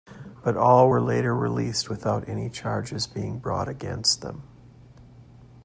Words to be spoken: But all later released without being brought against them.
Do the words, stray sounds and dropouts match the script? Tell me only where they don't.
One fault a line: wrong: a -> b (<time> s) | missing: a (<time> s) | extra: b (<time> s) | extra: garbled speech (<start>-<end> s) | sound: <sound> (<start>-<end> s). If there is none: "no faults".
extra: were (0.9 s)
extra: any charges (2.3 s)